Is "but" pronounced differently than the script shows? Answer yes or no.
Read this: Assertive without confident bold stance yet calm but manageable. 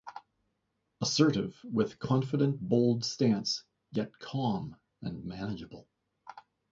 yes